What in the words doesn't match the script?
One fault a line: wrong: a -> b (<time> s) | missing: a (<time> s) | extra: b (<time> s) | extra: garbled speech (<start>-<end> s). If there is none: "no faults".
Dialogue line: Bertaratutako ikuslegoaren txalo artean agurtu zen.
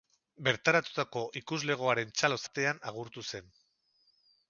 no faults